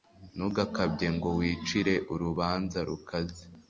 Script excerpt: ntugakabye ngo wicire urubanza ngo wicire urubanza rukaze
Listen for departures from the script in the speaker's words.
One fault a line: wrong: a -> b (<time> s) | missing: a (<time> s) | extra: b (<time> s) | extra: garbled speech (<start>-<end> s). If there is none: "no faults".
missing: ngo wicire urubanza (2.8 s)